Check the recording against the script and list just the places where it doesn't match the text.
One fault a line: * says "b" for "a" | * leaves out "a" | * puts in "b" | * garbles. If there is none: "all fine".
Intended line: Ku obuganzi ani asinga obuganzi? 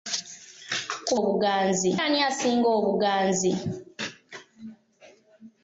all fine